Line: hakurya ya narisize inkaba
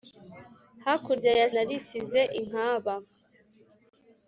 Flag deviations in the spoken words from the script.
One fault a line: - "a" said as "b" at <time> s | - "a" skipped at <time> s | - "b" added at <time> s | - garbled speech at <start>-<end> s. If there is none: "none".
none